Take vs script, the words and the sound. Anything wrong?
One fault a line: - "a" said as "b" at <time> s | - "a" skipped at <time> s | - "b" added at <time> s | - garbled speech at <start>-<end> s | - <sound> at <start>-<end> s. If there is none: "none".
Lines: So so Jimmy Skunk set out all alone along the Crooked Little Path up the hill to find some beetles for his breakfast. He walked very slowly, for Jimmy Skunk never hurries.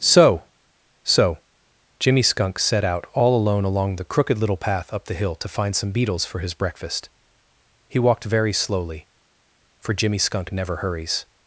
none